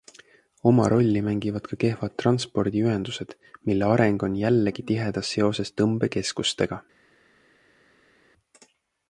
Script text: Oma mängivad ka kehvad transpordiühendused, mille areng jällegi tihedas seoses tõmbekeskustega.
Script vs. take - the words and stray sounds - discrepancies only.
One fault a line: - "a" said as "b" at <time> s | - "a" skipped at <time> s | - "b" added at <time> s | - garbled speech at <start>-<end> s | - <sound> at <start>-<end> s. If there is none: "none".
- "rolli" added at 0.9 s
- "on" added at 4.3 s